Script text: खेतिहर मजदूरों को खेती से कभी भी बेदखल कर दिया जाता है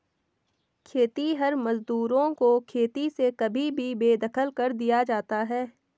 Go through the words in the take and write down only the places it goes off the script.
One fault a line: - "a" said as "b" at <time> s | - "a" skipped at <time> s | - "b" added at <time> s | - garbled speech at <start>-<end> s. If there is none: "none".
none